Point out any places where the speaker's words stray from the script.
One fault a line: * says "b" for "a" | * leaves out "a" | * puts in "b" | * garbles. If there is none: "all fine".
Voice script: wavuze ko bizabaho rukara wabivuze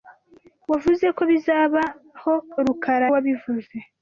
all fine